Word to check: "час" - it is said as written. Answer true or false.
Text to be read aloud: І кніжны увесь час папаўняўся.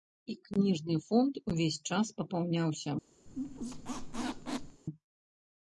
true